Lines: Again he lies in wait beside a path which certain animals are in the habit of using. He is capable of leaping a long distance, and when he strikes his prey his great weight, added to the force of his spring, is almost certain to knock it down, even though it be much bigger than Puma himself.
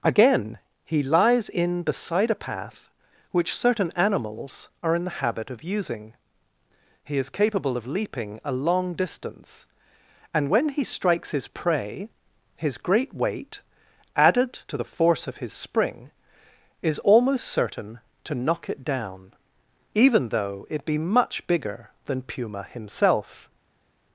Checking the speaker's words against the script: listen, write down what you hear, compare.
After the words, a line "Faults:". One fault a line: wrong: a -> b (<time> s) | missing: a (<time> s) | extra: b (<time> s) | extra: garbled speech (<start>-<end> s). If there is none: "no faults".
Again he lies in beside a path which certain animals are in the habit of using. He is capable of leaping a long distance, and when he strikes his prey his great weight, added to the force of his spring, is almost certain to knock it down, even though it be much bigger than Puma himself.
Faults:
missing: wait (1.8 s)